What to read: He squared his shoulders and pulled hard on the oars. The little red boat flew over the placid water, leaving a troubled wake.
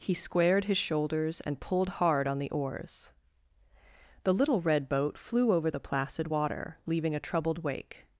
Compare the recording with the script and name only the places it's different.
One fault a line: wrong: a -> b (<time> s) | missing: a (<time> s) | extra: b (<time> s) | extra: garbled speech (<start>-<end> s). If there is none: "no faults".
no faults